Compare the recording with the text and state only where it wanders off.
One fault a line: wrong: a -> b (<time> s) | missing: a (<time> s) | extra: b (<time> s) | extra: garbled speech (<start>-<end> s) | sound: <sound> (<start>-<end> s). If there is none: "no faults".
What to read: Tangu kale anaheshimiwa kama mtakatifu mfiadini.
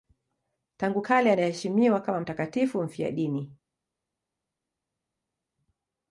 no faults